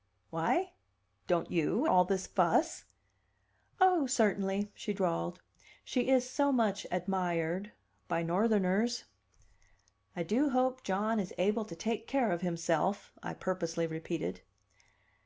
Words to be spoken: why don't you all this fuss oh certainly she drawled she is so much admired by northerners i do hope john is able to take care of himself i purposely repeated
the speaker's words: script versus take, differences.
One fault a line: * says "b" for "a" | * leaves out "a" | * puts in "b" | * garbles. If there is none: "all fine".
all fine